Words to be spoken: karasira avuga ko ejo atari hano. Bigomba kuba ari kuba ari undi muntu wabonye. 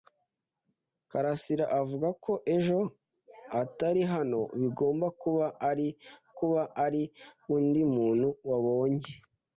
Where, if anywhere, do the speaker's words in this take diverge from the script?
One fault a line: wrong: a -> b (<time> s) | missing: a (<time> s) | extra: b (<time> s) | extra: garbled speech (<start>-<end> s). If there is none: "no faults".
no faults